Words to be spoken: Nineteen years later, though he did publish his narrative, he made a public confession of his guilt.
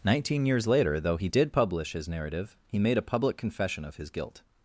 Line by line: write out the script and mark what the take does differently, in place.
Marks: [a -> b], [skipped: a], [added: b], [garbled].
Nineteen years later, though he did publish his narrative, he made a public confession of his guilt.